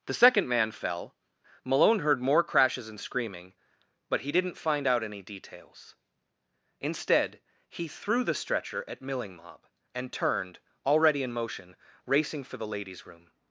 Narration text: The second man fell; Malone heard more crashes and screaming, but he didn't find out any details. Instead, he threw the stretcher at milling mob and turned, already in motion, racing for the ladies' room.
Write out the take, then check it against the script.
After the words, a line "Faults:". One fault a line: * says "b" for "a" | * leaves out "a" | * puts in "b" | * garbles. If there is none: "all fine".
The second man fell; Malone heard more crashes and screaming, but he didn't find out any details. Instead, he threw the stretcher at milling mob and turned, already in motion, racing for the ladies' room.
Faults:
all fine